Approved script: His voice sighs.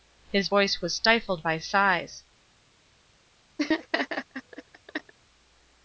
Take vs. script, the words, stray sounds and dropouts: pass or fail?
fail